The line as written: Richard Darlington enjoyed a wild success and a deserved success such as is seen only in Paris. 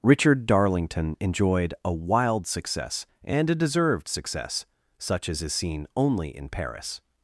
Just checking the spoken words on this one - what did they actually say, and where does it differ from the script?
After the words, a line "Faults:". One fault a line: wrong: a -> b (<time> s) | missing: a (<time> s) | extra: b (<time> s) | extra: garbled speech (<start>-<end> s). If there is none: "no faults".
Richard Darlington enjoyed a wild success and a deserved success such as is seen only in Paris.
Faults:
no faults